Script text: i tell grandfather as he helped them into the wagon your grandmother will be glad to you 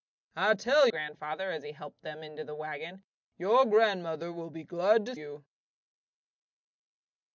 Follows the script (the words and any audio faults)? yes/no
yes